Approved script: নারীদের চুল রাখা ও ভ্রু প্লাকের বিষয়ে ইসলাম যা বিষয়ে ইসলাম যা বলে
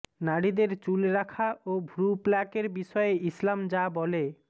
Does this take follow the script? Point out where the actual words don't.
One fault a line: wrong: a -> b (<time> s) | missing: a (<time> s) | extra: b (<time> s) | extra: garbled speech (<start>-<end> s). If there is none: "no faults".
missing: বিষয়ে ইসলাম যা (3.8 s)